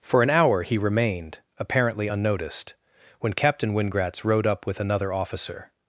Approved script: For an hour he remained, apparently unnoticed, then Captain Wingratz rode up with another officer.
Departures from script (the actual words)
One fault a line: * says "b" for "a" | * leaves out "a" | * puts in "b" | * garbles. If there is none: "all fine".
* says "when" for "then"